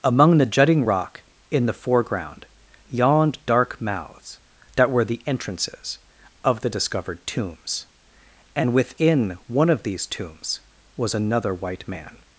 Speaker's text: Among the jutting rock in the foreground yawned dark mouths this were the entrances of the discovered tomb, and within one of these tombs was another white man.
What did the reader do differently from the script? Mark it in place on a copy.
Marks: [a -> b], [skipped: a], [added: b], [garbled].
Among the jutting rock in the foreground yawned dark mouths [this -> that] were the entrances of the discovered [tomb, -> tombs] and within one of these tombs was another white man.